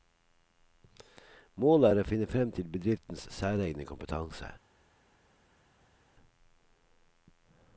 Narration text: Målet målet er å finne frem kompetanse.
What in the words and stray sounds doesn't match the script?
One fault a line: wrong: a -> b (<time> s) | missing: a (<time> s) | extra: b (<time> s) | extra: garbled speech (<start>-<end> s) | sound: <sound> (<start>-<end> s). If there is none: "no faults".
missing: målet (1.9 s)
extra: til bedriftens særegne (2.5 s)